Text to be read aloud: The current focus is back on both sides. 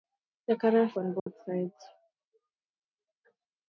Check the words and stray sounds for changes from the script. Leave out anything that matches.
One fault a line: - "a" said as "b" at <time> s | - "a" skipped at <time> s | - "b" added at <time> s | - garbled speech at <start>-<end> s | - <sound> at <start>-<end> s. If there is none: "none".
- "focus is back" skipped at 0.9 s
- dropout at 1.2-1.3 s